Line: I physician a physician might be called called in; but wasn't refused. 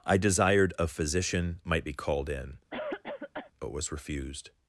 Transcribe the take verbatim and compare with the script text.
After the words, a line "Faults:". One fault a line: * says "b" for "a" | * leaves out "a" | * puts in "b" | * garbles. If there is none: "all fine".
I desired a physician might be called in; but was refused.
Faults:
* says "desired" for "physician"
* leaves out "called"
* says "was" for "wasn't"